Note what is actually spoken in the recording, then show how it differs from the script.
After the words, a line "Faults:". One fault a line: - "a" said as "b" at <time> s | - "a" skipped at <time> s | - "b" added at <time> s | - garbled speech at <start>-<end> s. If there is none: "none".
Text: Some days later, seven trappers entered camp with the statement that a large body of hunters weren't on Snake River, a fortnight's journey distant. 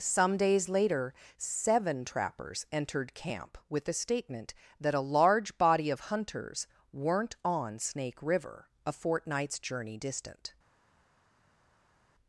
Some days later, seven trappers entered camp with the statement that a large body of hunters weren't on Snake River, a fortnight's journey distant.
Faults:
none